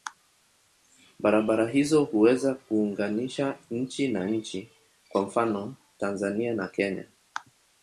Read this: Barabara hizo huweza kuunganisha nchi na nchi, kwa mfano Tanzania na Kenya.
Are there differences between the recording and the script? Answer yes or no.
no